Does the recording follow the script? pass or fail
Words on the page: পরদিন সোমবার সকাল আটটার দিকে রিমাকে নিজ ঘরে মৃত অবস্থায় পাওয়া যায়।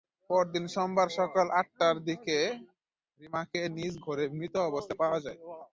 pass